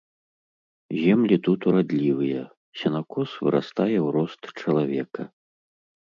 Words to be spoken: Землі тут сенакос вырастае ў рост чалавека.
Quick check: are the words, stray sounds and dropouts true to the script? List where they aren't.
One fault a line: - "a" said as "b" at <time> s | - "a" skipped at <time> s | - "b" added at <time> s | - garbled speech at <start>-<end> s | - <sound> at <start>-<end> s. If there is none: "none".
- "урадлівыя" added at 1.7 s